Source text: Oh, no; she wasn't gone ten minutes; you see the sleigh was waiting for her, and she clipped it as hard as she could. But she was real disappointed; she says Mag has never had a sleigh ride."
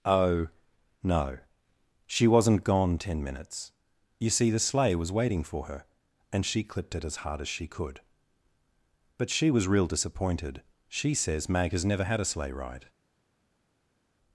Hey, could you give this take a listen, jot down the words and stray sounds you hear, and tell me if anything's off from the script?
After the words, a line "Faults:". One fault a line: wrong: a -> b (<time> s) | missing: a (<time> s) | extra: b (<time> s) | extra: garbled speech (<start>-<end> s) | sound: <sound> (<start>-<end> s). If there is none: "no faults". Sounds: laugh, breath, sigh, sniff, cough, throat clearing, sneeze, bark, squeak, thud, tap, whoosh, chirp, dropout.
Oh, no; she wasn't gone ten minutes; you see the sleigh was waiting for her, and she clipped it as hard as she could. But she was real disappointed; she says Mag has never had a sleigh ride."
Faults:
no faults